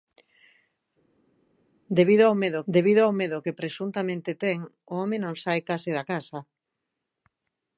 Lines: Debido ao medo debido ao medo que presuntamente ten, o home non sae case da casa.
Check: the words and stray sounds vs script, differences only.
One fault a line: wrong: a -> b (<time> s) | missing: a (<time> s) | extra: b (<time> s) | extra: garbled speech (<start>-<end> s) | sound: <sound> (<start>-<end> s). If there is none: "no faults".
no faults